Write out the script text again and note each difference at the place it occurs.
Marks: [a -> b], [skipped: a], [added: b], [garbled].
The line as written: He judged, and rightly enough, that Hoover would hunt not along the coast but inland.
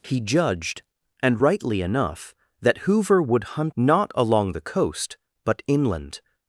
He judged, and rightly enough, that Hoover would hunt not along the coast but inland.